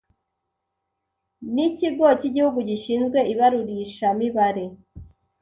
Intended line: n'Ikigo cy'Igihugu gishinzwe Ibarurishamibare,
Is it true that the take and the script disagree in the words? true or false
false